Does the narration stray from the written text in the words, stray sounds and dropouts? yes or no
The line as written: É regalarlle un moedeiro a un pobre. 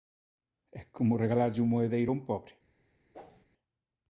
yes